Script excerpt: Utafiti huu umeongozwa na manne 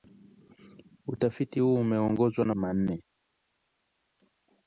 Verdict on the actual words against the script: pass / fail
pass